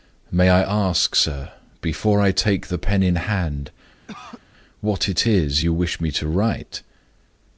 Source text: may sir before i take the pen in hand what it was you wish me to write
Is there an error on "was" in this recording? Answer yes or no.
yes